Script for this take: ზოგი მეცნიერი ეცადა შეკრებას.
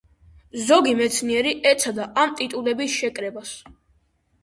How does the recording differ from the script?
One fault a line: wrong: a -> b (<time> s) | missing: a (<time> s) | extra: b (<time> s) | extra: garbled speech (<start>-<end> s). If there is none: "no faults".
extra: ამ ტიტულების (2.2 s)